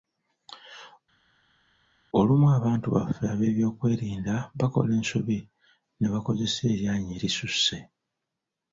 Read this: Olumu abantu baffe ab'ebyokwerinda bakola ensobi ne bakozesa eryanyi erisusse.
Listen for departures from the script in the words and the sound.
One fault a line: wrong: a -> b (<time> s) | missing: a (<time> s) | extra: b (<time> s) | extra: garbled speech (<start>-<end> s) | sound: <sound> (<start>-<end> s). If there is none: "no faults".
no faults